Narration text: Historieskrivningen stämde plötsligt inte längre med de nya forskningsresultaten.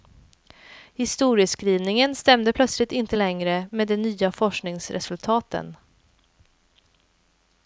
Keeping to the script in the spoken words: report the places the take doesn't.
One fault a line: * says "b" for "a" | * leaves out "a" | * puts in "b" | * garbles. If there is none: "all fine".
all fine